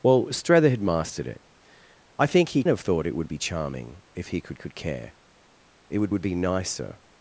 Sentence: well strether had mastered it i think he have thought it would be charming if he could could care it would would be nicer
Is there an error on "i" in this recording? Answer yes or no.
no